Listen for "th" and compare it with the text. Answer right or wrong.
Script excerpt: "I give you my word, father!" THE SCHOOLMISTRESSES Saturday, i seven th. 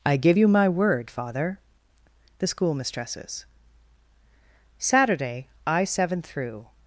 wrong